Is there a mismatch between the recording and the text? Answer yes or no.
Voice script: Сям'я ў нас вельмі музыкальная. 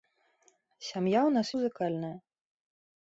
yes